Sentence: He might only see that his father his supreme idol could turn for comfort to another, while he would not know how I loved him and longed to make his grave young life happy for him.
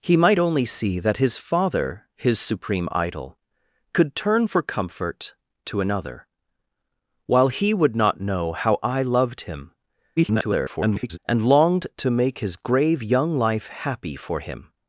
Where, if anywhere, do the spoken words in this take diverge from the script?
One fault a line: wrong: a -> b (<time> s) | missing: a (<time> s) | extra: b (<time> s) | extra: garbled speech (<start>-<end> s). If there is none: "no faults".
extra: garbled speech (10.2-11.2 s)